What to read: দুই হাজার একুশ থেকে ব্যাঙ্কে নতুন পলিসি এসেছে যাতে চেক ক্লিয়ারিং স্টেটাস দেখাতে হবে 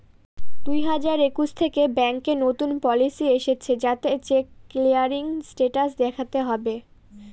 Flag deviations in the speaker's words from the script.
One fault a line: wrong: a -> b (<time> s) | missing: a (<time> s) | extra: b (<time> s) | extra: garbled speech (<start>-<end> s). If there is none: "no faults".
no faults